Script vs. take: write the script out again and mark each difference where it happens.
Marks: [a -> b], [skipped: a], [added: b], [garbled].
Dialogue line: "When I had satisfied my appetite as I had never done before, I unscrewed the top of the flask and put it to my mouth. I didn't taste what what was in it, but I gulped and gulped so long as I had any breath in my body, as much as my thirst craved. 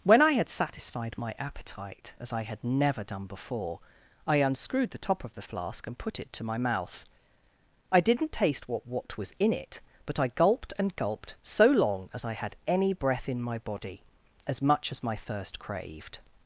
"When I had satisfied my appetite as I had never done before, I unscrewed the top of the flask and put it to my mouth. I didn't taste what what was in it, but I gulped and gulped so long as I had any breath in my body, as much as my thirst craved.